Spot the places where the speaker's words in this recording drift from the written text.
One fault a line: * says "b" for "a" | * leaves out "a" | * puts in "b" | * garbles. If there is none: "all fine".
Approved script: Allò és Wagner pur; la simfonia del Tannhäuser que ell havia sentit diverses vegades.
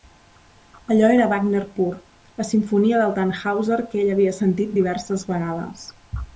* says "era" for "és"